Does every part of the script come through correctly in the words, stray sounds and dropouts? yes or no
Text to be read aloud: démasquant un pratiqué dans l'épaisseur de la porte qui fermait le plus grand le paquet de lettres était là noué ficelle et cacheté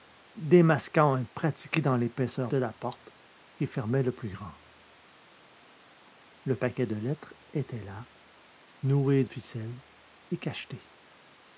yes